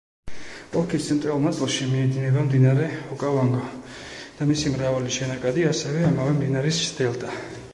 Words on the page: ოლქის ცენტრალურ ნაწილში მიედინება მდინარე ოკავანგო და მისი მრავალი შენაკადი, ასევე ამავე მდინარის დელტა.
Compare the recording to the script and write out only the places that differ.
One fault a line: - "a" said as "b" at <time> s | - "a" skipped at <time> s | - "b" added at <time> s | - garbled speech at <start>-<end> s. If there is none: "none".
none